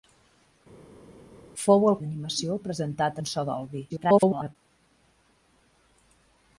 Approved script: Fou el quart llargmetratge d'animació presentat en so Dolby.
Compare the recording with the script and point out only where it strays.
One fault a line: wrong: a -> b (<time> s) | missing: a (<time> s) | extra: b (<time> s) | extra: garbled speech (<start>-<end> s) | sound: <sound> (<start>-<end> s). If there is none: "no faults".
missing: quart llargmetratge (2.0 s)
extra: garbled speech (3.9-4.6 s)